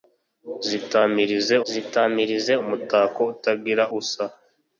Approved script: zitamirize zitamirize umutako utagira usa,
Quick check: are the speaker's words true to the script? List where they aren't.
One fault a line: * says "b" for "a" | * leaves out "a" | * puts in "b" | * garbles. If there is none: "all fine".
all fine